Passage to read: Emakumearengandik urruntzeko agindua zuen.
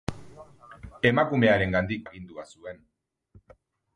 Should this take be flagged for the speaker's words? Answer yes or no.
yes